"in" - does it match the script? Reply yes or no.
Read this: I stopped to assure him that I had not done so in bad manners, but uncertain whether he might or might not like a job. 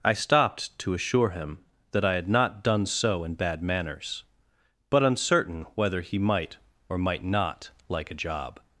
yes